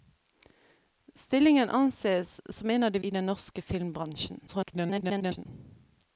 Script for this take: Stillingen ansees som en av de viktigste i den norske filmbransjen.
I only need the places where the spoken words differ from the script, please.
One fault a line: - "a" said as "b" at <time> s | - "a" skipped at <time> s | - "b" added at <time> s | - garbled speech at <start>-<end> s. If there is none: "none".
- "viktigste" skipped at 3.0 s
- garbled speech at 4.5-5.5 s